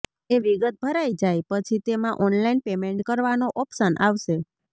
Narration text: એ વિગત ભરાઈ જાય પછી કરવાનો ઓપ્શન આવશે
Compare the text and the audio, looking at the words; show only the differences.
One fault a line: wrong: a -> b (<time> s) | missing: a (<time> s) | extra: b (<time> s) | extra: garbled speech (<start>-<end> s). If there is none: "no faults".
extra: તેમાં ઓનલાઈન પેમેન્ટ (1.9 s)